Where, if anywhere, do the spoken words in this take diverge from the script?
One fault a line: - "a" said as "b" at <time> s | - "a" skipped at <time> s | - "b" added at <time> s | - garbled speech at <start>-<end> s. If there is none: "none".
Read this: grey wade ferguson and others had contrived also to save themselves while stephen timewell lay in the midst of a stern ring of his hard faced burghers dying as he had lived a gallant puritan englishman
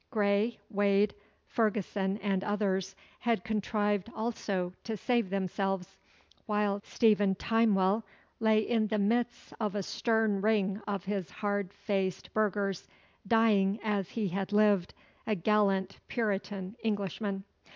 none